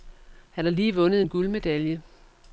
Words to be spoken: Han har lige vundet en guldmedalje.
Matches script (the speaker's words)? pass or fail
pass